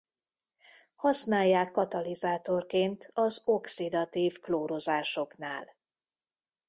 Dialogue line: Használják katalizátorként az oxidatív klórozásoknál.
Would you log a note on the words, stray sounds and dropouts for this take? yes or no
no